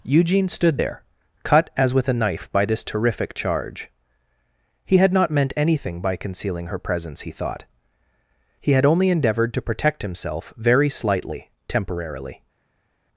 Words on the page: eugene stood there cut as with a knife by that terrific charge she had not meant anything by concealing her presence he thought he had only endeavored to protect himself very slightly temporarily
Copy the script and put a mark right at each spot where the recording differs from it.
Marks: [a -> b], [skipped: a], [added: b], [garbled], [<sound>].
eugene stood there cut as with a knife by [that -> this] terrific charge [she -> he] had not meant anything by concealing her presence he thought he had only endeavored to protect himself very slightly temporarily